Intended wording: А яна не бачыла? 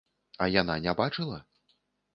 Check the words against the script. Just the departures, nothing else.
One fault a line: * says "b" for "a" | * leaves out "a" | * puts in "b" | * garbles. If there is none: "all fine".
all fine